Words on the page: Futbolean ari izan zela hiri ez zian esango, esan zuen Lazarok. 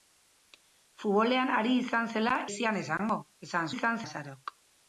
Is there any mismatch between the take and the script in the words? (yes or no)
yes